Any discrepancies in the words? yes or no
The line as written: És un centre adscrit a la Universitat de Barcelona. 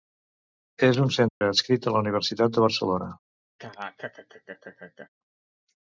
no